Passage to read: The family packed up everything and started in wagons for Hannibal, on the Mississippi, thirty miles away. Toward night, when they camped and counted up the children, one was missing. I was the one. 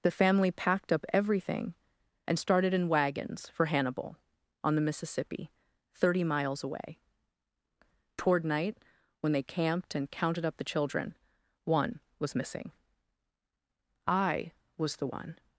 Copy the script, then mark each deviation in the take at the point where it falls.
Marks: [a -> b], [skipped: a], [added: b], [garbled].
The family packed up everything and started in wagons for Hannibal, on the Mississippi, thirty miles away. Toward night, when they camped and counted up the children, one was missing. I was the one.